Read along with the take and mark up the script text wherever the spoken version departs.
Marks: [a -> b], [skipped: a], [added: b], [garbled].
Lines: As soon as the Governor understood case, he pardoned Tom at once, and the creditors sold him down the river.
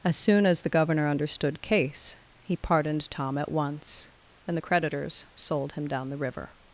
As soon as the Governor understood case, he pardoned Tom at once, and the creditors sold him down the river.